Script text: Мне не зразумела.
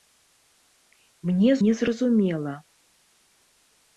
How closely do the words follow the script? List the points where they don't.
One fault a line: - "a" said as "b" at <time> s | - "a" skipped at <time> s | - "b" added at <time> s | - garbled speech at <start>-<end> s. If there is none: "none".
none